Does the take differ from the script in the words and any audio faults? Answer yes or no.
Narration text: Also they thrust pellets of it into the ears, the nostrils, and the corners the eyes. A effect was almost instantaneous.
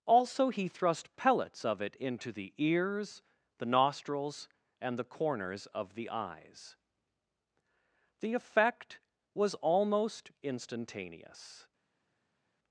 yes